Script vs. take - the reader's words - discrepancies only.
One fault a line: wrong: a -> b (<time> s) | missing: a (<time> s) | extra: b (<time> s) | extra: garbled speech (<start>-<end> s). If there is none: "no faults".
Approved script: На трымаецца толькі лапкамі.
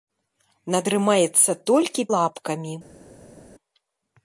no faults